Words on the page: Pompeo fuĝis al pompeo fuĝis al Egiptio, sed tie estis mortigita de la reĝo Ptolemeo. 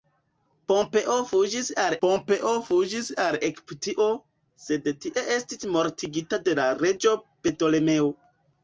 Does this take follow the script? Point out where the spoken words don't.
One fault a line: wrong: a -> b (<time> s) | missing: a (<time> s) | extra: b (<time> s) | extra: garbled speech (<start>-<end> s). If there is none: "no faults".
no faults